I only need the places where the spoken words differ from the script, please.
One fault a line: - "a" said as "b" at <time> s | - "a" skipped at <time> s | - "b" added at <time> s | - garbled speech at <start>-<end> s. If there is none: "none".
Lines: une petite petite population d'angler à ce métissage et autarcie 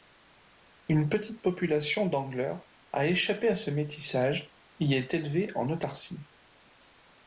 - "petite" skipped at 1.4 s
- "a échappé" added at 2.9 s
- "est élevée en" added at 4.9 s